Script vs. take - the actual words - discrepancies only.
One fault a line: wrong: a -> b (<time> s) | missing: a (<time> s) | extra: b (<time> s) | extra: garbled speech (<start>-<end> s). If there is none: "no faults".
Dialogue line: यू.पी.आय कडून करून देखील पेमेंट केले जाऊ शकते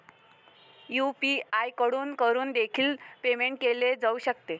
no faults